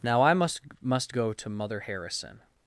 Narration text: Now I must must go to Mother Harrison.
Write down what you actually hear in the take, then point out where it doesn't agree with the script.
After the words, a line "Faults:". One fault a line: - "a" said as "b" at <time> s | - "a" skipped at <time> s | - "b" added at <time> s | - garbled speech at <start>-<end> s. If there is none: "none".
Now I must must go to Mother Harrison.
Faults:
none